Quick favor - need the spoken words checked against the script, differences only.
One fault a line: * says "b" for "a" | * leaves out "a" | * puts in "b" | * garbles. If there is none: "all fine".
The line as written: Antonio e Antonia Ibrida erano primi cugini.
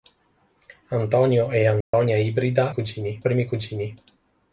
* says "cugini" for "erano"